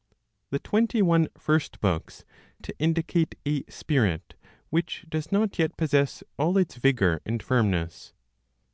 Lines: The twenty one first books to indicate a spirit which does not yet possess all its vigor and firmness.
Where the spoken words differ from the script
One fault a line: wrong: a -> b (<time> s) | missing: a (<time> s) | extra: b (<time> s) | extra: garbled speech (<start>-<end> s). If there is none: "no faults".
no faults